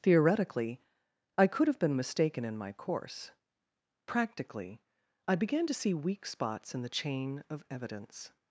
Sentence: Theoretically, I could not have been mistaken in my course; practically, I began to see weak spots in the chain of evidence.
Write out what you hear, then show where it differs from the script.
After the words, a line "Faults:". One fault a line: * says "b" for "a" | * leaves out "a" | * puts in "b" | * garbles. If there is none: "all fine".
Theoretically, I could have been mistaken in my course; practically, I began to see weak spots in the chain of evidence.
Faults:
* leaves out "not"